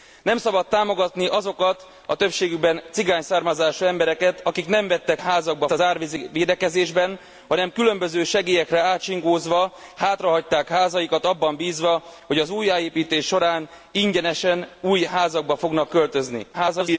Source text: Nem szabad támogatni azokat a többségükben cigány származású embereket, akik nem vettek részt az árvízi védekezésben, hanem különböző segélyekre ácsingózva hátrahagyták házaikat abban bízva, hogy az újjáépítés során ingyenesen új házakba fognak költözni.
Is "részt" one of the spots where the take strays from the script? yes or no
yes